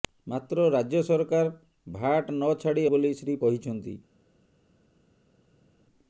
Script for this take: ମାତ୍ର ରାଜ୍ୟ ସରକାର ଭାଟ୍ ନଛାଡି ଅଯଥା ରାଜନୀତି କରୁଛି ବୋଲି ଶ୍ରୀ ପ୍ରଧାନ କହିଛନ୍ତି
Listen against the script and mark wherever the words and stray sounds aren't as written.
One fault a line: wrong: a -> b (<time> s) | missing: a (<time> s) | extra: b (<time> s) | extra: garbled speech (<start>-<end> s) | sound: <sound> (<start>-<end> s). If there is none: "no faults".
missing: ଅଯଥା ରାଜନୀତି କରୁଛି (2.8 s)
missing: ପ୍ରଧାନ (3.4 s)